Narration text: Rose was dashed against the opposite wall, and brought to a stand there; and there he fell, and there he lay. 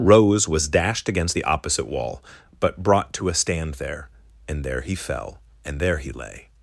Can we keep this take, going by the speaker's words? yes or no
no